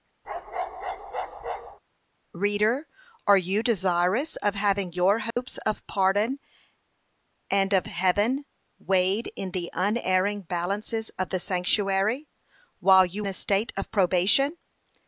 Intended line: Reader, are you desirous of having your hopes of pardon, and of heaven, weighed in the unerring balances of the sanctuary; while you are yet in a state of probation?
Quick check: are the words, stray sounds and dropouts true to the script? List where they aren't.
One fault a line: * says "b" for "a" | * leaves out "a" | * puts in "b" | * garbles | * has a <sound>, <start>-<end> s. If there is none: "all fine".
* has a bark, 0.2-1.8 s
* has a dropout, 5.3-5.4 s
* leaves out "are yet in"